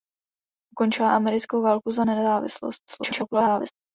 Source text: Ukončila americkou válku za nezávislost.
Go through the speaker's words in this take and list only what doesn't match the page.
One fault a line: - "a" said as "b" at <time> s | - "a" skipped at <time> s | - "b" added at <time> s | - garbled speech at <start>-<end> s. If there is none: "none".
- garbled speech at 2.9-3.7 s